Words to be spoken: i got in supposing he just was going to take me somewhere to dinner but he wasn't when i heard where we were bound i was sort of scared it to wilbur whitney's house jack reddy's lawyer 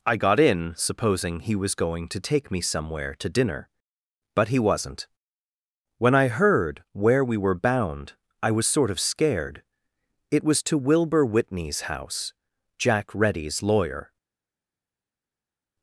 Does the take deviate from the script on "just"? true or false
true